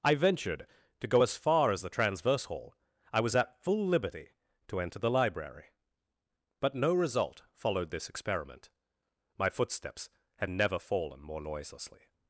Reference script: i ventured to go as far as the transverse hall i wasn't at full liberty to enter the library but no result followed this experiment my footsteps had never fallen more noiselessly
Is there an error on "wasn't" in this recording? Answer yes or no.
yes